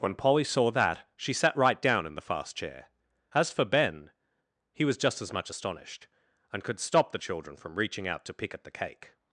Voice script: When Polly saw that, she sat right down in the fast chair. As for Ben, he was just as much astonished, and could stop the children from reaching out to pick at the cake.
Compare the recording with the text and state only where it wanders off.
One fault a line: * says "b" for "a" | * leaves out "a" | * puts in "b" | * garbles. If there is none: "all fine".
all fine